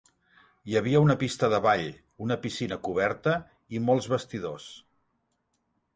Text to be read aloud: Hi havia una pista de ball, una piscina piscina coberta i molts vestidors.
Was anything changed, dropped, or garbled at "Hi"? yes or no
no